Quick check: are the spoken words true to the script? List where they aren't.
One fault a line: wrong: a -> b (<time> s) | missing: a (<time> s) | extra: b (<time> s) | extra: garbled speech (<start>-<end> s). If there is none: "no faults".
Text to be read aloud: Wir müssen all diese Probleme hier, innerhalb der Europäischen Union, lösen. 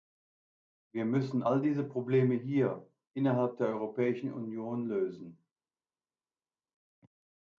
no faults